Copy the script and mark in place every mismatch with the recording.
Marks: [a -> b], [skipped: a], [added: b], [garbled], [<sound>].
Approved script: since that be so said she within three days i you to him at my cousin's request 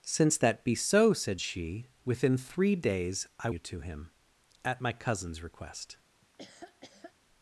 since that be so said she within three days i you to him at my cousin's request [laugh]